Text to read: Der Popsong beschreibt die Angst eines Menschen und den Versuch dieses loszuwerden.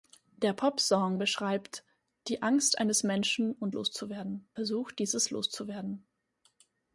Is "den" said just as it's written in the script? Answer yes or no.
no